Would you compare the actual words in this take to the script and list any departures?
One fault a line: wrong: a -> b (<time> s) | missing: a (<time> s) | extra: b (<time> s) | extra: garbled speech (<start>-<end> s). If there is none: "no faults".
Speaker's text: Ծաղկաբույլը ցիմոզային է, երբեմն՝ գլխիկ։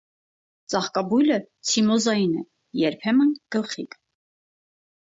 no faults